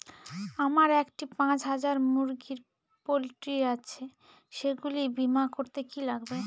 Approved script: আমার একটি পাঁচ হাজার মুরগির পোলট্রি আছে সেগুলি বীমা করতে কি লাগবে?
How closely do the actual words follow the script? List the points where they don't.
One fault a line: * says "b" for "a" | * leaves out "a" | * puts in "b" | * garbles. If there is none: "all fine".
all fine